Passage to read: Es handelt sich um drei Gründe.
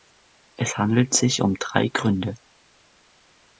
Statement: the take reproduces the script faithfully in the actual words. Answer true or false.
true